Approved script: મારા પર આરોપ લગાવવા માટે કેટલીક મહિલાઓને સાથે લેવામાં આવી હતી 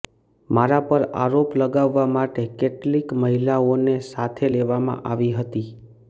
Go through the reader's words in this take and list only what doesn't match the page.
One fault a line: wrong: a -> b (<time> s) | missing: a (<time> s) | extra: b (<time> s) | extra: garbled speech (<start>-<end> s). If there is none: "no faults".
no faults